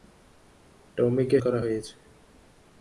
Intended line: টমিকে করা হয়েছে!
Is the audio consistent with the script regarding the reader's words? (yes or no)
yes